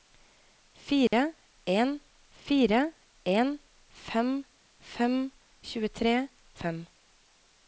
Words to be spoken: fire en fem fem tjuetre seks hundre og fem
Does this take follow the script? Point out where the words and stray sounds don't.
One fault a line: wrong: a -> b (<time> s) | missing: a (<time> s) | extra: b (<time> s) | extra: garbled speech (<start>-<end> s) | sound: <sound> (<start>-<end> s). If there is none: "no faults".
sound: dropout (1.1-1.1 s)
extra: fire en (2.4 s)
missing: seks hundre (6.1 s)